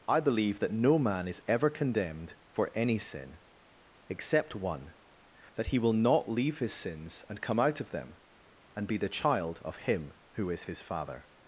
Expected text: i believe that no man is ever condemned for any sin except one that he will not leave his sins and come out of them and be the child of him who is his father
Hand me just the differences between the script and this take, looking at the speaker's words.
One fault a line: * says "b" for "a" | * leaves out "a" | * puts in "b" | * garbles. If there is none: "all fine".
all fine